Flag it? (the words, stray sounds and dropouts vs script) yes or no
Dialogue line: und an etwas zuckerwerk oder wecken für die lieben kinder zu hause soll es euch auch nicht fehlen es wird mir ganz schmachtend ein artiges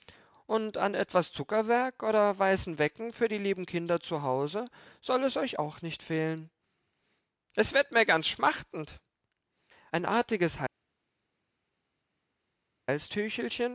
yes